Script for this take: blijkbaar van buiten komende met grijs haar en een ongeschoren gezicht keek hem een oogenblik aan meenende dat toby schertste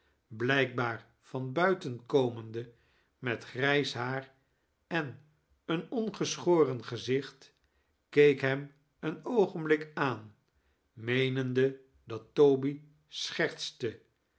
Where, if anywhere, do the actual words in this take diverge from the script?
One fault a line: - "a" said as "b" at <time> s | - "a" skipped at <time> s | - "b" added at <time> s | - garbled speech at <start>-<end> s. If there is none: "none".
none